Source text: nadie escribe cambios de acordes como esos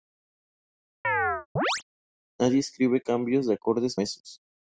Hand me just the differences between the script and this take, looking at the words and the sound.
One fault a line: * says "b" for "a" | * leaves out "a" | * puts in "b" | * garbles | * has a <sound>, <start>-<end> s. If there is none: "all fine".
* has a chirp, 1.0-1.8 s
* leaves out "como"